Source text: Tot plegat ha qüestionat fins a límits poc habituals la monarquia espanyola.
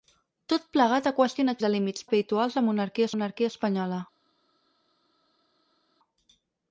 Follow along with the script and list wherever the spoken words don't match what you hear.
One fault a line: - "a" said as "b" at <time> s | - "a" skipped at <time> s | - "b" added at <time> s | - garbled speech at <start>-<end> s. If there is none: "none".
- "fins" skipped at 1.6 s
- "poc" skipped at 2.1 s
- "monarquia" added at 3.1 s